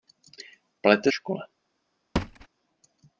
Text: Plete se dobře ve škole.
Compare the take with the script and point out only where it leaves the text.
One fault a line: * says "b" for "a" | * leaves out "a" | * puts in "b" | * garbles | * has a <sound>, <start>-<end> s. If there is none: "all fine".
* leaves out "se dobře ve"
* has a thud, 2.2-2.5 s